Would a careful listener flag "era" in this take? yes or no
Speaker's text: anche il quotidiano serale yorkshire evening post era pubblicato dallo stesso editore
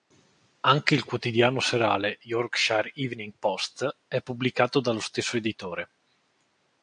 yes